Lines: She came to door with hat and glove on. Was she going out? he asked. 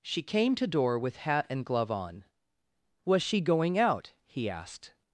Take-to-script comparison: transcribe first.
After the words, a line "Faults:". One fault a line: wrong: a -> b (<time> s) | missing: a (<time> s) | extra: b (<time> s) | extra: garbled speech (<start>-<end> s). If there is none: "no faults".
She came to door with hat and glove on. Was she going out? he asked.
Faults:
no faults